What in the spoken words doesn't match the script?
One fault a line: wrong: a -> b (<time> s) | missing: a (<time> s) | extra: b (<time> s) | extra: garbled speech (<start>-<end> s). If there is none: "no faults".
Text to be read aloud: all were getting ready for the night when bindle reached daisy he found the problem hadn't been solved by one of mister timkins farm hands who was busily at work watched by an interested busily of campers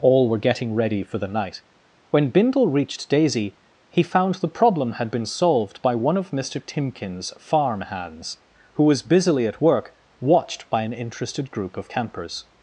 wrong: hadn't -> had (4.9 s)
wrong: busily -> group (11.5 s)